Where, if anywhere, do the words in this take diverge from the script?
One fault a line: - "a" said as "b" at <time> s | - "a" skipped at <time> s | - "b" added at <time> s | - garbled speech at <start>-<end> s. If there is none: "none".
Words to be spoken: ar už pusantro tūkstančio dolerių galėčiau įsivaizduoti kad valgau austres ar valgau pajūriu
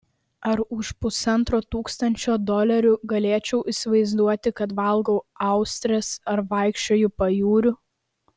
- "valgau" said as "vaikščioju" at 6.5 s